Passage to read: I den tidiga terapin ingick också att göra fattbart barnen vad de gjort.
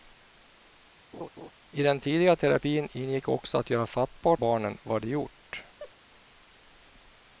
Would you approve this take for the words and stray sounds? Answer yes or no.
no